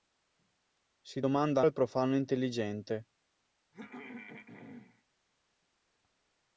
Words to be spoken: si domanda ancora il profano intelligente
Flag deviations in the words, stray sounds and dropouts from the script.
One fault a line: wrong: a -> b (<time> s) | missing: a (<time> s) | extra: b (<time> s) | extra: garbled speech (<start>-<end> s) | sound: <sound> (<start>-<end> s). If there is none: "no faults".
missing: ancora (1.6 s)
sound: throat clearing (3.7-5.0 s)